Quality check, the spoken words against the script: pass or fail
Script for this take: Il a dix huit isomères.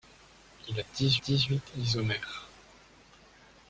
fail